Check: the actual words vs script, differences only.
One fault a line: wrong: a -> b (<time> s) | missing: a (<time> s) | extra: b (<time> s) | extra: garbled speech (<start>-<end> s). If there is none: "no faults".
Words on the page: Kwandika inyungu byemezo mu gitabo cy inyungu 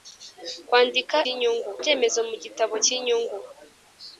no faults